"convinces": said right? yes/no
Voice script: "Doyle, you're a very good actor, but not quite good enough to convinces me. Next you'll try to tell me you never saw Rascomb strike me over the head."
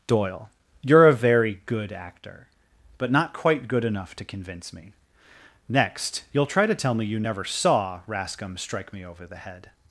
no